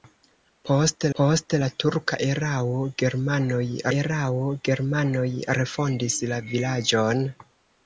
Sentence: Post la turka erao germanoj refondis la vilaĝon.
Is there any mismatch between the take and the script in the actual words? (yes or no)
yes